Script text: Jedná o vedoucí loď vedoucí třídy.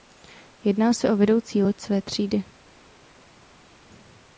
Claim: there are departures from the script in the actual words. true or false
true